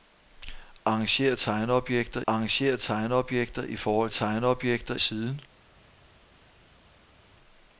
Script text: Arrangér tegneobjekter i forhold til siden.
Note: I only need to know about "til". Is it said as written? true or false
false